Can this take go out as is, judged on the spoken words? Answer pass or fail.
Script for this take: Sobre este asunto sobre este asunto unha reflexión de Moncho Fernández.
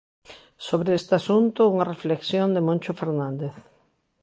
fail